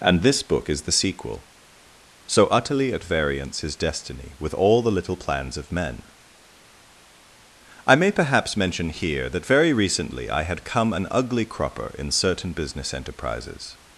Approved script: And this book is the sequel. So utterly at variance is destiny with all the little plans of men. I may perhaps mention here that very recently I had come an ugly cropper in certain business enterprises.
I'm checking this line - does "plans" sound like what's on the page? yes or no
yes